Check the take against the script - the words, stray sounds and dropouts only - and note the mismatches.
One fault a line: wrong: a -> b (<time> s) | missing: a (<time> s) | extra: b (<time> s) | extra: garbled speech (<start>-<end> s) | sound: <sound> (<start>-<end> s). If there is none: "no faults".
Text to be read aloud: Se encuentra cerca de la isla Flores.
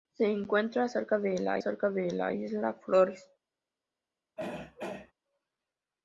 extra: cerca de la (1.6 s)
sound: throat clearing (4.4-5.1 s)